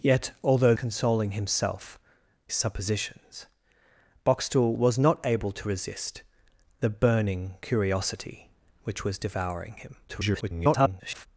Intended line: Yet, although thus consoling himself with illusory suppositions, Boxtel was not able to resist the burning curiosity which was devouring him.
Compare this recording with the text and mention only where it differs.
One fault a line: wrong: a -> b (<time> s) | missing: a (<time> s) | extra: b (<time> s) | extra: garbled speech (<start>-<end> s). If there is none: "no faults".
missing: thus (0.7 s)
missing: with illusory (2.0 s)
extra: garbled speech (10.1-11.3 s)